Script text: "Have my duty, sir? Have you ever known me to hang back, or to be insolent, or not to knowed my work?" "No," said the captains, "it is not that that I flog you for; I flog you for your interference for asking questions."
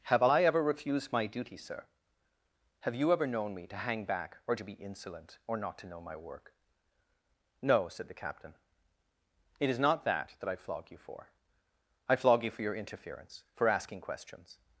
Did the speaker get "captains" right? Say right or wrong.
wrong